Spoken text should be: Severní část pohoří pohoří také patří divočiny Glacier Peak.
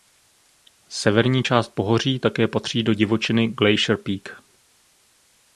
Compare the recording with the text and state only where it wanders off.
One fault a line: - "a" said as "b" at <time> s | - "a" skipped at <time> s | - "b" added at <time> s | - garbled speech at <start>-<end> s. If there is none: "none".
- "pohoří" skipped at 2.2 s
- "do" added at 2.8 s